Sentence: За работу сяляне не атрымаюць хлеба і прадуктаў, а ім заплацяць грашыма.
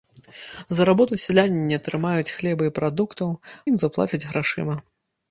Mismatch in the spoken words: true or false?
true